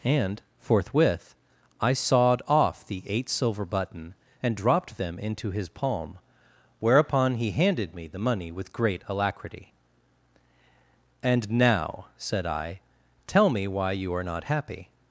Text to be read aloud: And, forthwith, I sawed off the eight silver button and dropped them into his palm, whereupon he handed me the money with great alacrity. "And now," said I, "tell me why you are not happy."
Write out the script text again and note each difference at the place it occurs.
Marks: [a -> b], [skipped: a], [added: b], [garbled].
And, forthwith, I sawed off the eight silver button and dropped them into his palm, whereupon he handed me the money with great alacrity. "And now," said I, "tell me why you are not happy."